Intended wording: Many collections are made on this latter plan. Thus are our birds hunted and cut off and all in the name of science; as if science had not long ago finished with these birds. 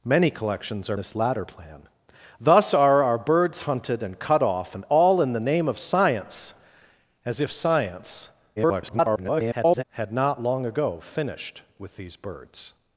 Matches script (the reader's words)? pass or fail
fail